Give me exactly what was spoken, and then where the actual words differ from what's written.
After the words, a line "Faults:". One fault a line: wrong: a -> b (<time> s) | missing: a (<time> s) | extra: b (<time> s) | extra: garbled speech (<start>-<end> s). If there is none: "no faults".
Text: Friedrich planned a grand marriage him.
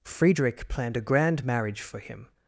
Friedrich planned a grand marriage for him.
Faults:
extra: for (1.8 s)